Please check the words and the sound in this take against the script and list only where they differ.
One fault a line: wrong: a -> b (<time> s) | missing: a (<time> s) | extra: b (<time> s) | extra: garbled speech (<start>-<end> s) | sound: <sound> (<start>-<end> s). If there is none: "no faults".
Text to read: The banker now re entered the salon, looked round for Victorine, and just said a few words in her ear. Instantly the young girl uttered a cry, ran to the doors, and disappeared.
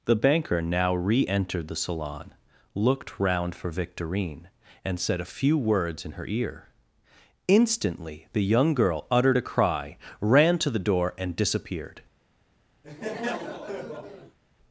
missing: just (5.0 s)
wrong: doors -> door (10.8 s)
sound: laugh (12.8-14.4 s)